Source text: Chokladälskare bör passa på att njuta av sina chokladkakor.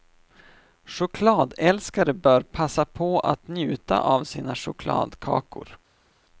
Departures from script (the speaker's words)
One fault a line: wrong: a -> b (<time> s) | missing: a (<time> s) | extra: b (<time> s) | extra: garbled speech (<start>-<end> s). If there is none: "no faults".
no faults